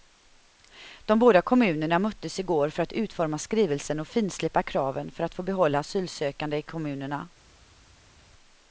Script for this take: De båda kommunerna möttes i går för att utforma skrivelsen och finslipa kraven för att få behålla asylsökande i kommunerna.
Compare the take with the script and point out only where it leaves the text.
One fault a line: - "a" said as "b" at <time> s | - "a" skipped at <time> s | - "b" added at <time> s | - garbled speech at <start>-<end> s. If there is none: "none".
none